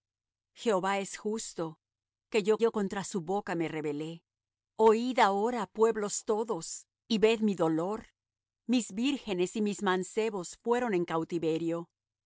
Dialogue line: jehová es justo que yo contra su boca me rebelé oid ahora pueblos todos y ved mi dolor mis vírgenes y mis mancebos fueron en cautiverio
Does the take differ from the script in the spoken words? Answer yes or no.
yes